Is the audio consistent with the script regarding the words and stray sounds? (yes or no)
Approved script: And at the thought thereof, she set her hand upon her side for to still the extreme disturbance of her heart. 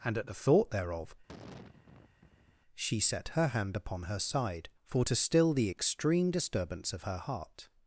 no